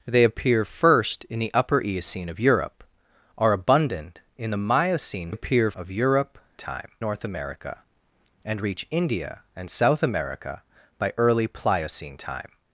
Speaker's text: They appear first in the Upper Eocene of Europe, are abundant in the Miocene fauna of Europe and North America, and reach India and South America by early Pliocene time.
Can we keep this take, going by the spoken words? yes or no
no